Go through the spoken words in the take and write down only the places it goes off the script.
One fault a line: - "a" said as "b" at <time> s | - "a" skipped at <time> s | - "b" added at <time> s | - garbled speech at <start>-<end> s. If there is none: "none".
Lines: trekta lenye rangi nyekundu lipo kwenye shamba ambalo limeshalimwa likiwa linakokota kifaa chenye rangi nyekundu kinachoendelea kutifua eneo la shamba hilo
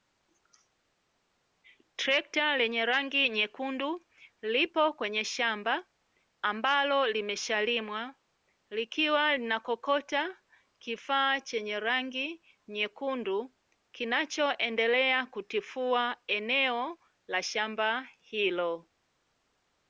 none